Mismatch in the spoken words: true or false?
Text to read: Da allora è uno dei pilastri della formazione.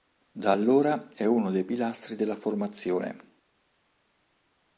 false